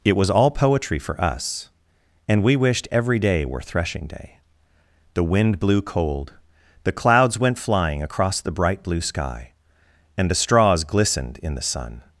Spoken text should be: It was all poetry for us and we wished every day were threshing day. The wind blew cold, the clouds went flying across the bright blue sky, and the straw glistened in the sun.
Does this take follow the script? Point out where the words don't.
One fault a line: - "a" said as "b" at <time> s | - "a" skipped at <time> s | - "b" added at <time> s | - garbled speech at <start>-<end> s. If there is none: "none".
- "straw" said as "straws" at 10.3 s